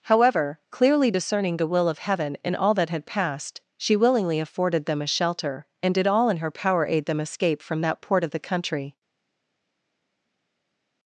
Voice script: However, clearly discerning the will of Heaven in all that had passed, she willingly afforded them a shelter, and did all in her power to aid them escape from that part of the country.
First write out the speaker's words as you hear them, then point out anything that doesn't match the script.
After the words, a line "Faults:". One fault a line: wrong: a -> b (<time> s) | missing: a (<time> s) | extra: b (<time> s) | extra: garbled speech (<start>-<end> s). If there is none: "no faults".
However, clearly discerning the will of Heaven in all that had passed, she willingly afforded them a shelter, and did all in her power aid them escape from that port of the country.
Faults:
missing: to (6.8 s)
wrong: part -> port (8.0 s)